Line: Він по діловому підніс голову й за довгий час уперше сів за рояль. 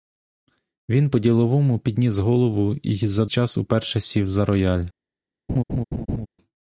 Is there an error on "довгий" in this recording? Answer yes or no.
yes